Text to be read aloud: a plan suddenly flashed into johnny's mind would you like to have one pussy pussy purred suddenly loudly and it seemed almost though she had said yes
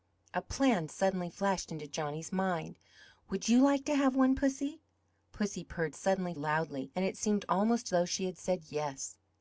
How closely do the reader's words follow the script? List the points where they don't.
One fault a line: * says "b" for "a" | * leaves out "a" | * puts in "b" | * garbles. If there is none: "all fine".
all fine